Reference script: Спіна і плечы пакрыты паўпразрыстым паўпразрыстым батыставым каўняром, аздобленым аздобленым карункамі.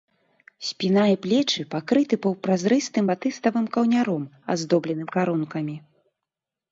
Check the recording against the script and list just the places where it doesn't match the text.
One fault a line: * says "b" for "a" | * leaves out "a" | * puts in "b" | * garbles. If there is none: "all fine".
* leaves out "паўпразрыстым"
* leaves out "аздобленым"